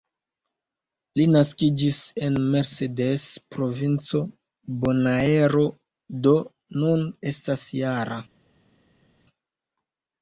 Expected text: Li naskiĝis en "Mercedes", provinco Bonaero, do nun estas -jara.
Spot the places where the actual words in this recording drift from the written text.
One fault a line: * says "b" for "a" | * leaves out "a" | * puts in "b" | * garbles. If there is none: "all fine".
all fine